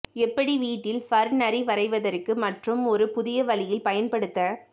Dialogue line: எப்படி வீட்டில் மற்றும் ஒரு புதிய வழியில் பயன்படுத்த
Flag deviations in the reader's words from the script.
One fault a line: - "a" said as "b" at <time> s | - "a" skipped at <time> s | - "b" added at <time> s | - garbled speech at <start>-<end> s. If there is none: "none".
- "ஃபர் நரி வரைவதற்கு" added at 1.0 s